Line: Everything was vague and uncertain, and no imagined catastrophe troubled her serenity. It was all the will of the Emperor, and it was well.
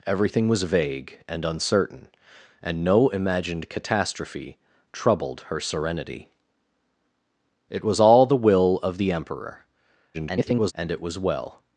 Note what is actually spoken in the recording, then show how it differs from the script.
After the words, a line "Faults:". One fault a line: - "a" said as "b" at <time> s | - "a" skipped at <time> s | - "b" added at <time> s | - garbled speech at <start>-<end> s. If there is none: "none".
Everything was vague and uncertain, and no imagined catastrophe troubled her serenity. It was all the will of the Emperor, [garbled] and it was well.
Faults:
- garbled speech at 10.1-10.7 s